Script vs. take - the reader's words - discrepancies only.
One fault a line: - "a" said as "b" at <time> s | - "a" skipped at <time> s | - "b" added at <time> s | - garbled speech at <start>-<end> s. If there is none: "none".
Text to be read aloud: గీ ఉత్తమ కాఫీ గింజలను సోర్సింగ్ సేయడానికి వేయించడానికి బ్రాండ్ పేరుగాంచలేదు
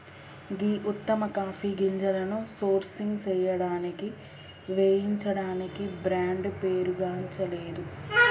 none